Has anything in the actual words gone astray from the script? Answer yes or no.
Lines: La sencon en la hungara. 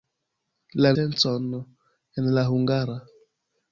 no